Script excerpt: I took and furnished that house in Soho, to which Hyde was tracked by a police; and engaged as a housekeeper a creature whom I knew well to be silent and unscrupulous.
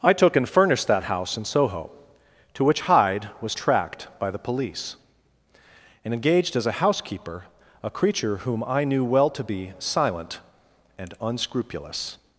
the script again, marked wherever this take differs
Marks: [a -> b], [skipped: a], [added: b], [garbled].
I took and furnished that house in Soho, to which Hyde was tracked by [a -> the] police; and engaged as a housekeeper a creature whom I knew well to be silent and unscrupulous.